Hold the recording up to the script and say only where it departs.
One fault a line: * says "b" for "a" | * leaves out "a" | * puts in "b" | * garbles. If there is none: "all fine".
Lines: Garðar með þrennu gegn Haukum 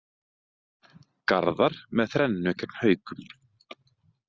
all fine